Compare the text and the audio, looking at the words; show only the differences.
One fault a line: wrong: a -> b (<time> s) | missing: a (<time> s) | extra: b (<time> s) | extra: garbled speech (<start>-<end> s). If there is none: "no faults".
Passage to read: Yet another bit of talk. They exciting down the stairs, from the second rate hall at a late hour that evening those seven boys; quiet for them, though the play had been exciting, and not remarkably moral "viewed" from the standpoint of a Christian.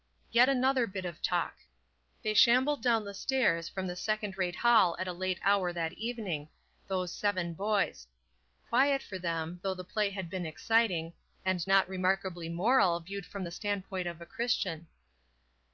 wrong: exciting -> shambled (2.3 s)